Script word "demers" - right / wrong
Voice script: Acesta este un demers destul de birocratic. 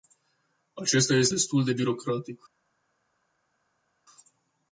wrong